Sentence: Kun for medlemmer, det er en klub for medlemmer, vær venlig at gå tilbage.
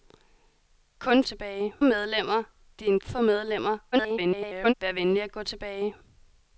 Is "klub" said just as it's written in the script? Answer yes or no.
no